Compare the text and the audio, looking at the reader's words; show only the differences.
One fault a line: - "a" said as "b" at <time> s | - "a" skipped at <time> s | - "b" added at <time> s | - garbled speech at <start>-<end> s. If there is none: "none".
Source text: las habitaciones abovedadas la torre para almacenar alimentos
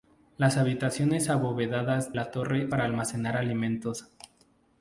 none